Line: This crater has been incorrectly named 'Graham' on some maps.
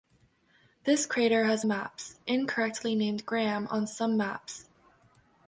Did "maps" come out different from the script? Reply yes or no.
no